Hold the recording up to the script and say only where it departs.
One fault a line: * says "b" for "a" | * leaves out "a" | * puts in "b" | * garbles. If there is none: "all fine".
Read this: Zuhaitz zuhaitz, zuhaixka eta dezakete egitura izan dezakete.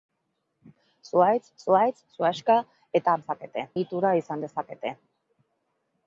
all fine